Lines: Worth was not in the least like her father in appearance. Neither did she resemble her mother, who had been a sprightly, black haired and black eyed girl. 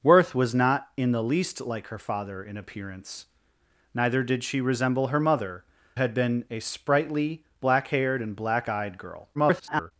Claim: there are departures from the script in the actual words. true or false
true